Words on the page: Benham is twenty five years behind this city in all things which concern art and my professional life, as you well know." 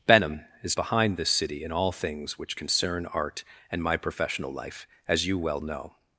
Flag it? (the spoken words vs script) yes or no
yes